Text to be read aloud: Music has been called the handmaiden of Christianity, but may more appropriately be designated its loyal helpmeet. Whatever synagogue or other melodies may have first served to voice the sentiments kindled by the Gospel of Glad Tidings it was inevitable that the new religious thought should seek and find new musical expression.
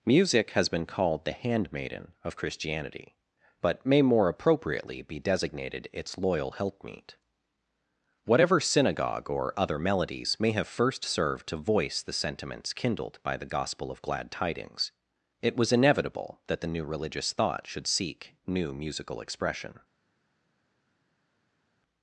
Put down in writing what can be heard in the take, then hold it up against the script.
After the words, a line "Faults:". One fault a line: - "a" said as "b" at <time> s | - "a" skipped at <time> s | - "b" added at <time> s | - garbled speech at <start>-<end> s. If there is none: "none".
Music has been called the handmaiden of Christianity, but may more appropriately be designated its loyal helpmeet. Whatever synagogue or other melodies may have first served to voice the sentiments kindled by the Gospel of Glad Tidings it was inevitable that the new religious thought should seek new musical expression.
Faults:
- "and find" skipped at 18.3 s